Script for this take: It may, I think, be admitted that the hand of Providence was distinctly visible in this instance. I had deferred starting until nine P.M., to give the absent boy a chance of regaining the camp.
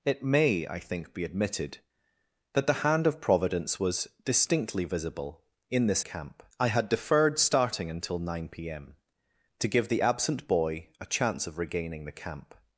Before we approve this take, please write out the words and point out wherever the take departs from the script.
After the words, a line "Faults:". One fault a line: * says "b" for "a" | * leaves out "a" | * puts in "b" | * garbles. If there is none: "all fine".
It may, I think, be admitted that the hand of Providence was distinctly visible in this camp. I had deferred starting until nine P.M., to give the absent boy a chance of regaining the camp.
Faults:
* says "camp" for "instance"